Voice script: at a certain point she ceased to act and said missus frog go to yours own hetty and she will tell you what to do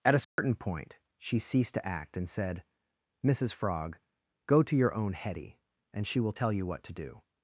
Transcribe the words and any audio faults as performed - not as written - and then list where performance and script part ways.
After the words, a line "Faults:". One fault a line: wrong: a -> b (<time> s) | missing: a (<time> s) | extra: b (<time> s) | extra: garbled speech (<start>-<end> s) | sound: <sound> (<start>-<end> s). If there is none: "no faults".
at a certain point she ceased to act and said missus frog go to your own hetty and she will tell you what to do
Faults:
sound: dropout (0.2-0.4 s)
wrong: yours -> your (4.8 s)